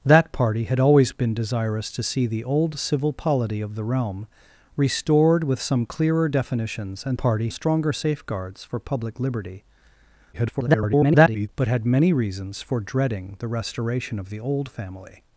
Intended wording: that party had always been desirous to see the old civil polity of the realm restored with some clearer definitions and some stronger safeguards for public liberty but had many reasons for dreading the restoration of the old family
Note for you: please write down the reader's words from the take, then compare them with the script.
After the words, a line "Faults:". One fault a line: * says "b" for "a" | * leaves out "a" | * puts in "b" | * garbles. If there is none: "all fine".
that party had always been desirous to see the old civil polity of the realm restored with some clearer definitions and party stronger safeguards for public liberty [garbled] but had many reasons for dreading the restoration of the old family
Faults:
* says "party" for "some"
* garbles